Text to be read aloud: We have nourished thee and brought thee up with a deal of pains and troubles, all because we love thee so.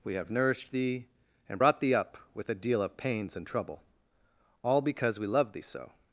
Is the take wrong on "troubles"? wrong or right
wrong